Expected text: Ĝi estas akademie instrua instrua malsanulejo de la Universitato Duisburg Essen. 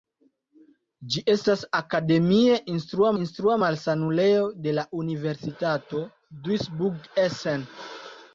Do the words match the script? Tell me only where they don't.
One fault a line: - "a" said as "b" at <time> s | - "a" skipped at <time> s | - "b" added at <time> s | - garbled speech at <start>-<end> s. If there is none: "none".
none